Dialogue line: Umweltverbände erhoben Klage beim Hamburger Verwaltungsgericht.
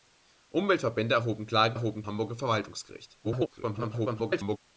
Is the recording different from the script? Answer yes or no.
yes